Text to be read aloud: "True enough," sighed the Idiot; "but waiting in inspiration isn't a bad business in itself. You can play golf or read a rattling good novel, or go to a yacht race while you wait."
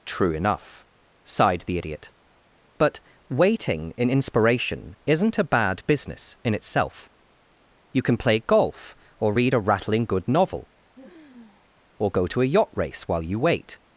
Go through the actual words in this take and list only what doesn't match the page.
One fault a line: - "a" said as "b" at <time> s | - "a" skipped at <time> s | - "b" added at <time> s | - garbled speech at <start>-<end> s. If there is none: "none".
none